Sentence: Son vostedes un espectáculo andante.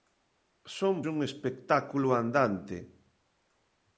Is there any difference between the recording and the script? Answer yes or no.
yes